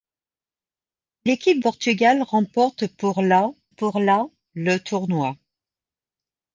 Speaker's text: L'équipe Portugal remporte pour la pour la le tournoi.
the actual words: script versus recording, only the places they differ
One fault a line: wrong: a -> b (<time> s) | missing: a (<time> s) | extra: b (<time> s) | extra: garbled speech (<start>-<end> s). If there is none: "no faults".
no faults